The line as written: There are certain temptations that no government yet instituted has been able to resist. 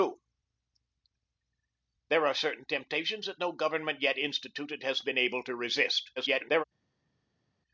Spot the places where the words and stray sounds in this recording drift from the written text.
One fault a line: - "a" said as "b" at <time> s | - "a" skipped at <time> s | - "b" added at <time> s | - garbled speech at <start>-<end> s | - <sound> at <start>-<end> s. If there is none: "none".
- garbled speech at 6.2-6.6 s